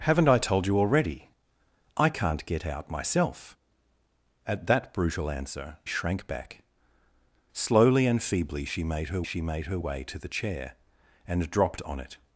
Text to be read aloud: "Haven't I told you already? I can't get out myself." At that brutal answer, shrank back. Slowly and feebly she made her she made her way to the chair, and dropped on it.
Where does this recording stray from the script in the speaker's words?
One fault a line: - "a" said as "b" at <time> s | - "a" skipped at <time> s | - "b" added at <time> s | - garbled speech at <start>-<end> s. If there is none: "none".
none